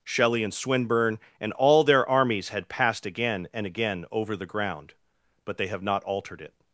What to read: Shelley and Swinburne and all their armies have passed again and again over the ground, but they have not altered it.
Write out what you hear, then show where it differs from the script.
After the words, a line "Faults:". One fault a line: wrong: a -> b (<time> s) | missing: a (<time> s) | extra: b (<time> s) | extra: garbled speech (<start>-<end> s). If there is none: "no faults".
Shelley and Swinburne and all their armies had passed again and again over the ground, but they have not altered it.
Faults:
wrong: have -> had (2.5 s)